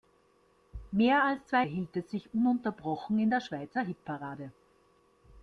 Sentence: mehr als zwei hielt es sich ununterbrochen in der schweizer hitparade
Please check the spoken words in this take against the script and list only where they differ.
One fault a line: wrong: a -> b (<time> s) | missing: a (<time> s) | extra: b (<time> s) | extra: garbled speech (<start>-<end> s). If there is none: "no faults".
no faults